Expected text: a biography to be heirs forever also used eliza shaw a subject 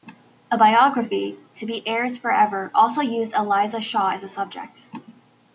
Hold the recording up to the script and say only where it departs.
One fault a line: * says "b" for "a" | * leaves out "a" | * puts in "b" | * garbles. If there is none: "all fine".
* puts in "as"